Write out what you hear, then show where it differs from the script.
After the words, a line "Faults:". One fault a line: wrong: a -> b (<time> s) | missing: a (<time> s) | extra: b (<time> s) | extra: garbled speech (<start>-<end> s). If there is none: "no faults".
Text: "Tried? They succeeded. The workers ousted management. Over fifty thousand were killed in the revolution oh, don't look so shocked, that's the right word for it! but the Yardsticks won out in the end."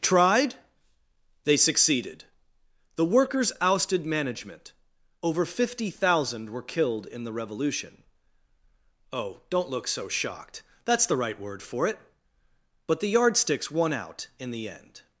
"Tried? They succeeded. The workers ousted management. Over fifty thousand were killed in the revolution oh, don't look so shocked, that's the right word for it! but the Yardsticks won out in the end."
Faults:
no faults